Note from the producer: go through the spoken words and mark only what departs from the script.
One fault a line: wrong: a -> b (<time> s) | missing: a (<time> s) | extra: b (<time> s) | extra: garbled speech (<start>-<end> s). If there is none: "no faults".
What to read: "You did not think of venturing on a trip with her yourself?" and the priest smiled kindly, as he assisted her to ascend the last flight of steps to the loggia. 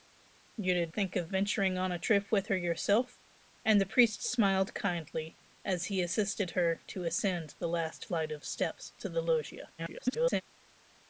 missing: not (0.9 s)
extra: garbled speech (9.8-10.4 s)